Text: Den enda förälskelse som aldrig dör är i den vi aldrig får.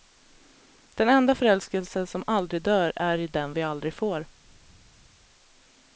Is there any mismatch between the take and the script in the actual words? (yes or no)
no